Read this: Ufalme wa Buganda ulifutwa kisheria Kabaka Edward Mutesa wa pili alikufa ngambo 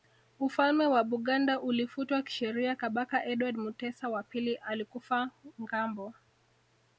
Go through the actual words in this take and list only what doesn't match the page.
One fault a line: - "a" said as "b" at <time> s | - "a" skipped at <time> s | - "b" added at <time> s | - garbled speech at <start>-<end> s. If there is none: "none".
none